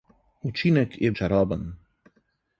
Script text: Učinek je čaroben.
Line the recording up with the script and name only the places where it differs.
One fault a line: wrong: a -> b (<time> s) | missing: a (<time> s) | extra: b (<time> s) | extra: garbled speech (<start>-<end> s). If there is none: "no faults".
no faults